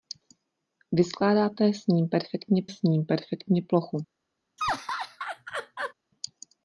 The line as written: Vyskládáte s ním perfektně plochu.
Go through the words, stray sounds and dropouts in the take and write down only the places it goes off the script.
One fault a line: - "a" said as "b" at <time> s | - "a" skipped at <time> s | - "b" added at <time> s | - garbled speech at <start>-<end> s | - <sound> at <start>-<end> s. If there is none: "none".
- "s ním perfektně" added at 2.7 s
- laugh at 4.6-5.9 s